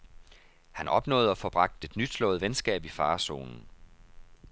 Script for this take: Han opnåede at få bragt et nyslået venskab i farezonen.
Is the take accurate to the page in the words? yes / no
yes